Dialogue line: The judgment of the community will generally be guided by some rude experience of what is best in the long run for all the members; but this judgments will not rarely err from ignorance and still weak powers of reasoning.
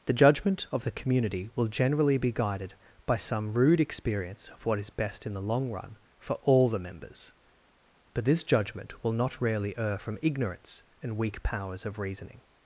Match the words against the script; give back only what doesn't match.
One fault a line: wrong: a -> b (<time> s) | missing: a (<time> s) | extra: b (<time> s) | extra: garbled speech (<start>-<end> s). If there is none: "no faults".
wrong: judgments -> judgment (8.4 s)
missing: still (11.2 s)